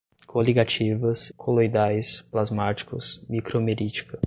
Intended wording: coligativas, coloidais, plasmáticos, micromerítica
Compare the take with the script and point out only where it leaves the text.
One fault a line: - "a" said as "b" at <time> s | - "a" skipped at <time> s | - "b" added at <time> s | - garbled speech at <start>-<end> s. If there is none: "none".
none